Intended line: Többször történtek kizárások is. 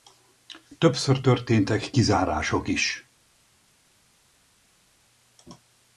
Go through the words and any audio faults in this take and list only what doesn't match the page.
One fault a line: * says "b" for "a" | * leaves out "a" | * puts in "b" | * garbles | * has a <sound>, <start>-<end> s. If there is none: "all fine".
all fine